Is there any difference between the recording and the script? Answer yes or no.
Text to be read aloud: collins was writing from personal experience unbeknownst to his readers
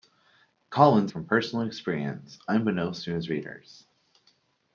yes